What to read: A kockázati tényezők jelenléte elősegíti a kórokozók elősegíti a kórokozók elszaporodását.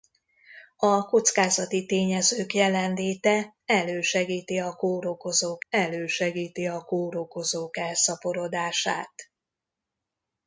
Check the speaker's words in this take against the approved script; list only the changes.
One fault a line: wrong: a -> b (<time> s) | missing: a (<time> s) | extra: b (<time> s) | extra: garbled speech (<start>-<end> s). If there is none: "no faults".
no faults